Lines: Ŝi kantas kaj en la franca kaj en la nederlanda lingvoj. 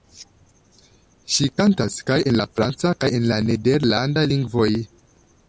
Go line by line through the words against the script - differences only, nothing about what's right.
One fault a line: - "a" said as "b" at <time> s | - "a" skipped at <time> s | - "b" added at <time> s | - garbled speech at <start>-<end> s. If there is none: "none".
none